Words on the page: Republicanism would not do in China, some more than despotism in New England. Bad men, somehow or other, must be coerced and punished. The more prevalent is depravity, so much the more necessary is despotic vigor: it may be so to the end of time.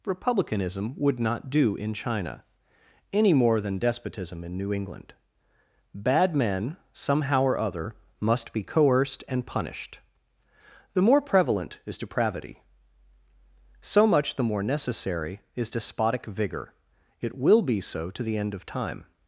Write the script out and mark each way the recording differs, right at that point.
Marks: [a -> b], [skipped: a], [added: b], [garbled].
Republicanism would not do in China, [some -> any] more than despotism in New England. Bad men, somehow or other, must be coerced and punished. The more prevalent is depravity, so much the more necessary is despotic vigor: it [may -> will] be so to the end of time.